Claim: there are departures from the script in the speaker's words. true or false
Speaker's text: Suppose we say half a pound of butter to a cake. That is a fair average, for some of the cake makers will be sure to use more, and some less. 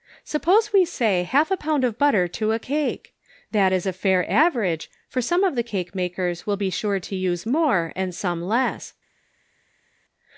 false